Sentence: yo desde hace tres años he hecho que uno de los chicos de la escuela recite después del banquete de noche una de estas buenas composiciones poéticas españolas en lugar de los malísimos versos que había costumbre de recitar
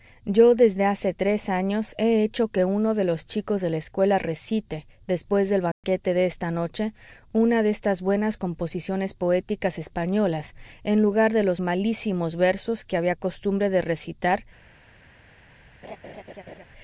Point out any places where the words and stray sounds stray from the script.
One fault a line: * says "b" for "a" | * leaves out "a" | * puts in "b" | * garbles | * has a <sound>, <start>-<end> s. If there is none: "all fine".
* has a dropout, 5.7-5.8 s
* puts in "esta"
* has a laugh, 15.8-16.6 s